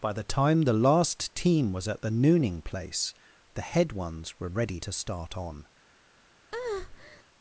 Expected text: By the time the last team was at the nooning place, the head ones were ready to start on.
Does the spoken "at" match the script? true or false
true